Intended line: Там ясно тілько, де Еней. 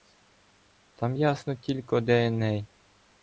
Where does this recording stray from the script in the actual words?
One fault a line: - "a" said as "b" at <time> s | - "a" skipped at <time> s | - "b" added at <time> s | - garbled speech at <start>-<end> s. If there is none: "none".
none